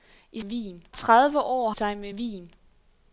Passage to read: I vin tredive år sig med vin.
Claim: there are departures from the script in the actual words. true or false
false